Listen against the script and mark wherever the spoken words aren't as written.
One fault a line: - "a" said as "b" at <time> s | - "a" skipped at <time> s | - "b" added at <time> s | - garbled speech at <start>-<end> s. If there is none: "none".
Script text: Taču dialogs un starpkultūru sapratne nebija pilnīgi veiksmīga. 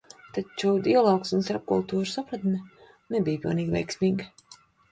none